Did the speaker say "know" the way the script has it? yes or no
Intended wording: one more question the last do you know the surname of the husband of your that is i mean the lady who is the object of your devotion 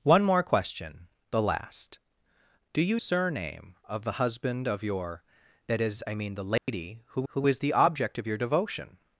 no